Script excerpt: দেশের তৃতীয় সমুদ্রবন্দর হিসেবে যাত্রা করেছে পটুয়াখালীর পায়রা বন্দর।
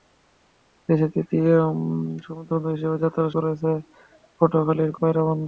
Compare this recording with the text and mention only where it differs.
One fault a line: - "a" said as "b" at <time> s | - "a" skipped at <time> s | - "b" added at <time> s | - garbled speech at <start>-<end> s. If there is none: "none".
none